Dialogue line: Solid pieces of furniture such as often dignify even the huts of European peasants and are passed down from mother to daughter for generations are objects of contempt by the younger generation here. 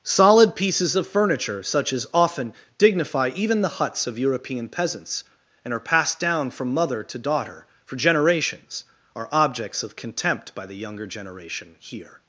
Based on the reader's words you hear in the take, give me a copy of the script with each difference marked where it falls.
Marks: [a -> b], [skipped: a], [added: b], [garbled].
Solid pieces of furniture such as often dignify even the huts of European peasants and are passed down from mother to daughter for generations are objects of contempt by the younger generation here.